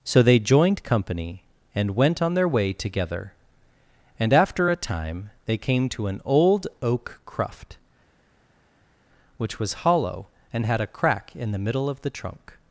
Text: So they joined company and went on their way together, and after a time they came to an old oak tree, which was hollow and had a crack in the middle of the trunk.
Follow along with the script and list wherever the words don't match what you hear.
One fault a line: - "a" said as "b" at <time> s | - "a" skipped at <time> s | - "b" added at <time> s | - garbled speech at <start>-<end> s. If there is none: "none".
- "tree" said as "cruft" at 7.3 s